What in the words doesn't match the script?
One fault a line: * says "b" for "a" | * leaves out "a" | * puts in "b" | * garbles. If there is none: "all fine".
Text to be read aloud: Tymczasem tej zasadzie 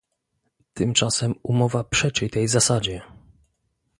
* puts in "umowa przeczy"